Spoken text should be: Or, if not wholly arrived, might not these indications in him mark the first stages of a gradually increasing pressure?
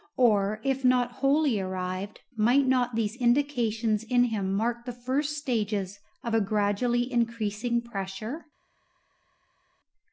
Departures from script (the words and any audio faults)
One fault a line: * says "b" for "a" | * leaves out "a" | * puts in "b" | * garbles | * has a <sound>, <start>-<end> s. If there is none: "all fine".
all fine